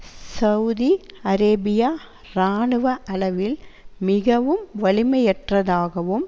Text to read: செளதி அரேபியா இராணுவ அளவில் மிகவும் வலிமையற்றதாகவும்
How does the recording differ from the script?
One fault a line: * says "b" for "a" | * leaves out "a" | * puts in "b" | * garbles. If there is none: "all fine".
all fine